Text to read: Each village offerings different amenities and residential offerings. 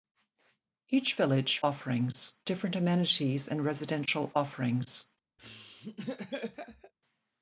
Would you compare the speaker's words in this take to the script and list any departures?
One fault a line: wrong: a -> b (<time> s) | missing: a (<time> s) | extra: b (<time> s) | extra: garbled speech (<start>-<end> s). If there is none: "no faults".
no faults